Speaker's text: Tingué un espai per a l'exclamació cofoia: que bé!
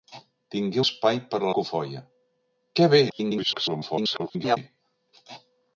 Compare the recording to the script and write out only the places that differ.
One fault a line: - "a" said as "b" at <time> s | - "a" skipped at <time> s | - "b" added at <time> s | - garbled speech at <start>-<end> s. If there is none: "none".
- "un" skipped at 0.8 s
- "l'exclamació" skipped at 1.5 s
- garbled speech at 3.1-4.6 s